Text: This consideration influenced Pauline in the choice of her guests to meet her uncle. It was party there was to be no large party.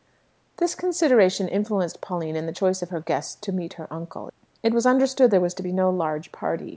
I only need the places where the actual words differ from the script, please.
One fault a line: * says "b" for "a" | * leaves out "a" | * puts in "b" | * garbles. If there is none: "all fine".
* says "understood" for "party"